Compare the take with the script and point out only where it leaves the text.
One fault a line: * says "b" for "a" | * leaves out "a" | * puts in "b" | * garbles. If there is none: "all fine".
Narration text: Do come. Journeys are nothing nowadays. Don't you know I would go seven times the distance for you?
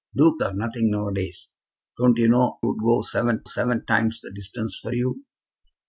* leaves out "come Journeys"
* leaves out "I"
* puts in "seven"